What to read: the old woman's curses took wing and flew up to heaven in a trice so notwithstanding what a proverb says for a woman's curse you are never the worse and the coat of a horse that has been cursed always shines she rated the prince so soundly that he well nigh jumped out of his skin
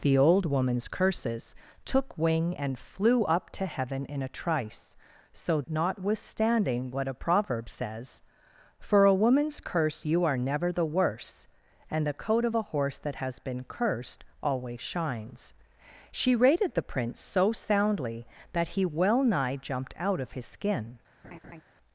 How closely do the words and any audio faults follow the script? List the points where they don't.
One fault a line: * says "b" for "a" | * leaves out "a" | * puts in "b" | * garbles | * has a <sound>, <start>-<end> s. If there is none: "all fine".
* has a laugh, 21.2-21.6 s